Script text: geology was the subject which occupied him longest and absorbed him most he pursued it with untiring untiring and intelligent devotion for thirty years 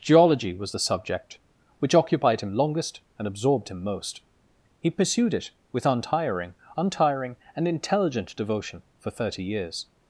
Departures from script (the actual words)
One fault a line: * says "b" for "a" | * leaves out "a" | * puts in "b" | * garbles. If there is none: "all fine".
all fine